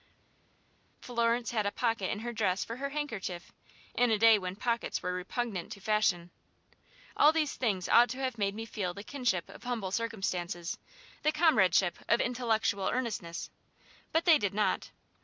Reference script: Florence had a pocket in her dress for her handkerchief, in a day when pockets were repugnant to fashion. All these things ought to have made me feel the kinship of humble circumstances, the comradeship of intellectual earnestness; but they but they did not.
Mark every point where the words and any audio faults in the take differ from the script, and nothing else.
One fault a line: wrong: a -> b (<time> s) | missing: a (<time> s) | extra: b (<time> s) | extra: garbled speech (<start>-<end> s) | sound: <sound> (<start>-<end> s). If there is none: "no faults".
missing: but they (14.4 s)